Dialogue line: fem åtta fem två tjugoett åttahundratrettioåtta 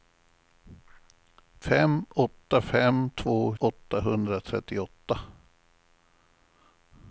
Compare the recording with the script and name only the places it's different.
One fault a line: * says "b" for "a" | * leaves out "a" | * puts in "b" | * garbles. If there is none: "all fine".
* leaves out "tjugoett"